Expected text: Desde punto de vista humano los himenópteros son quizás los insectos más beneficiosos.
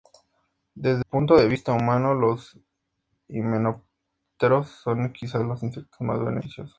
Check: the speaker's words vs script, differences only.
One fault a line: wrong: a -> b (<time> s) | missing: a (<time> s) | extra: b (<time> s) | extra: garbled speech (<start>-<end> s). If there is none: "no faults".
no faults